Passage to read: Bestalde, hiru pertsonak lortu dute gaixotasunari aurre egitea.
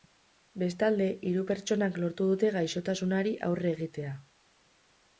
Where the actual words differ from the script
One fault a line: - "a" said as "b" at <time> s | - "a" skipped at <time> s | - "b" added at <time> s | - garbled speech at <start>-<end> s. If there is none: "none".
none